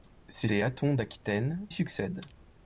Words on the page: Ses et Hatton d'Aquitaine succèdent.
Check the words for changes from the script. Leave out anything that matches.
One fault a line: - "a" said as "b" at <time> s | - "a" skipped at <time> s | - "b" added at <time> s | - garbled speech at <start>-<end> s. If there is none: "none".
none